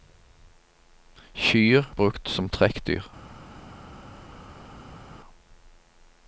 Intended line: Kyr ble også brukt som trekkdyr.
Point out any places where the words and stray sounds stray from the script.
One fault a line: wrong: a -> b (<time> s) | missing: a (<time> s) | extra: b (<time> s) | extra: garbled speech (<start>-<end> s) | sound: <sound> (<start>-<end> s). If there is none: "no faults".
missing: ble også (1.9 s)